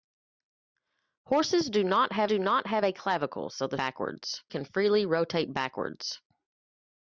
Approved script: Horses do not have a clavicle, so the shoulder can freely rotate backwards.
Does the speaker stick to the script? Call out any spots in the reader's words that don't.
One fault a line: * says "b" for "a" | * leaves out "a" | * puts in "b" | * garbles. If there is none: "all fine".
* puts in "do not have"
* says "backwards" for "shoulder"